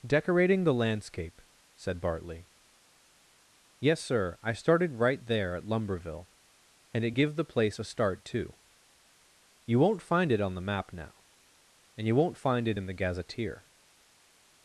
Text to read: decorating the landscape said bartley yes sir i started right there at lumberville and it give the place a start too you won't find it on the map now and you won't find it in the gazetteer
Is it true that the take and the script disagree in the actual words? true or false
false